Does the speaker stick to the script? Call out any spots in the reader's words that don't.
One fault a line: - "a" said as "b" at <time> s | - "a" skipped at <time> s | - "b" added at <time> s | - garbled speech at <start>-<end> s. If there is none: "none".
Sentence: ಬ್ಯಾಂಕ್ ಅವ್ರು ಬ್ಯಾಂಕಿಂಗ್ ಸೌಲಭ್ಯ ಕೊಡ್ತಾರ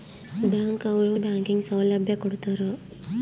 none